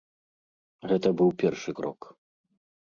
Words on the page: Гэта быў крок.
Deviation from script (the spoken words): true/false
true